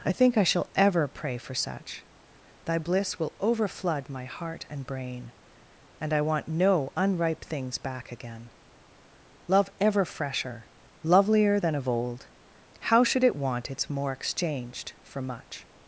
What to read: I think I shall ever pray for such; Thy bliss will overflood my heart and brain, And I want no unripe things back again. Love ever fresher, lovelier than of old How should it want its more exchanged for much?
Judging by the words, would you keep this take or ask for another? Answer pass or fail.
pass